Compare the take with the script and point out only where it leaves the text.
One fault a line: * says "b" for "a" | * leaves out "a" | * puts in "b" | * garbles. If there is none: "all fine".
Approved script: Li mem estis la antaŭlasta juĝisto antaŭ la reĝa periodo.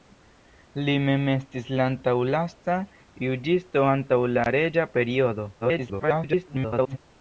* garbles